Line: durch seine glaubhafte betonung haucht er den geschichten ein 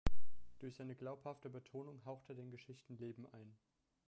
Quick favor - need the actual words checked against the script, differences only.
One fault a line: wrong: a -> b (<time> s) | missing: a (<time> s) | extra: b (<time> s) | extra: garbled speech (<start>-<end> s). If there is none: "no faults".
extra: leben (3.0 s)